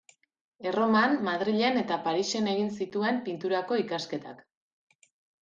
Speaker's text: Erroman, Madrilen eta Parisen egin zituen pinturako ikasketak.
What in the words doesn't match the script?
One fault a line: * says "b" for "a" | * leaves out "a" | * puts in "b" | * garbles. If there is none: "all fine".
all fine